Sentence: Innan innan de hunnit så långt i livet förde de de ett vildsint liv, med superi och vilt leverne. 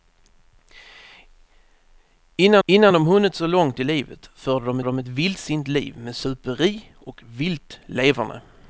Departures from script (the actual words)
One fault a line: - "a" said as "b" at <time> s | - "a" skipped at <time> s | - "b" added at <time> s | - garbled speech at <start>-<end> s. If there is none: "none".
none